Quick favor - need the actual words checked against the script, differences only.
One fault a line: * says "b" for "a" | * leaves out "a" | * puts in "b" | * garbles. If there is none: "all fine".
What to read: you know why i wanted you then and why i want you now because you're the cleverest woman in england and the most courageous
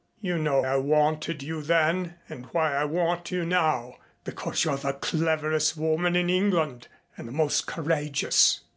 * leaves out "why"